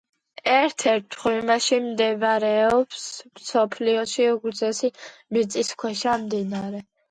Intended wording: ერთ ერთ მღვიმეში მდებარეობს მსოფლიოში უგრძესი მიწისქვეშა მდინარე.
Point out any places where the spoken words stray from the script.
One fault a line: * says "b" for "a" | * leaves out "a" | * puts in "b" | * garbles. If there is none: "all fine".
all fine